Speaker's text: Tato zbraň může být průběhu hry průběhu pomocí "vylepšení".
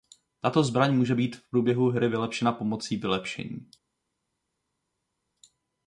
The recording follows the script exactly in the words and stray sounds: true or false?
false